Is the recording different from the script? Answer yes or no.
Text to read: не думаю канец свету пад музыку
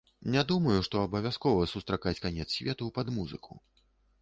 yes